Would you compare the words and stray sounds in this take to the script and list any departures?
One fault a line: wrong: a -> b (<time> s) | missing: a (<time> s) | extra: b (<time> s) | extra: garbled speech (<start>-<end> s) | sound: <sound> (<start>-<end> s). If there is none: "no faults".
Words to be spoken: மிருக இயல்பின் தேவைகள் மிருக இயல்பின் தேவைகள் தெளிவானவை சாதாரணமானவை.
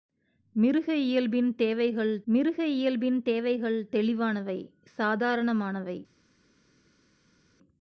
no faults